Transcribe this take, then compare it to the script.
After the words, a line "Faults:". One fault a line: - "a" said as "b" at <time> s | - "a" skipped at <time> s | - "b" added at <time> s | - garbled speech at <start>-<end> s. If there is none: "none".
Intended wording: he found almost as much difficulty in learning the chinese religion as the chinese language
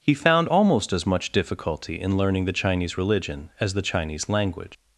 he found almost as much difficulty in learning the chinese religion as the chinese language
Faults:
none